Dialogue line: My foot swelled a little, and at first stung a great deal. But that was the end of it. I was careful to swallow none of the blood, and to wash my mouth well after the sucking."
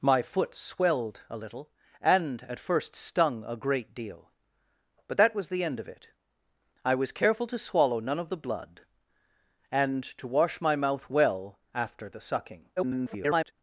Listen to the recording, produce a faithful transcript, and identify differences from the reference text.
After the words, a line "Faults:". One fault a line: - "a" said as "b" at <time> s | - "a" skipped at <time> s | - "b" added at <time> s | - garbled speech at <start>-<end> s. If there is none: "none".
My foot swelled a little, and at first stung a great deal. But that was the end of it. I was careful to swallow none of the blood, and to wash my mouth well after the sucking." [garbled]
Faults:
- garbled speech at 12.8-13.5 s